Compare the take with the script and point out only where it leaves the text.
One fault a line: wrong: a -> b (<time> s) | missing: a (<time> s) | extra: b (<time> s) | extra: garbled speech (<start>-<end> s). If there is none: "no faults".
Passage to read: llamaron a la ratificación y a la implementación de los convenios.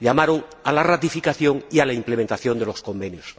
no faults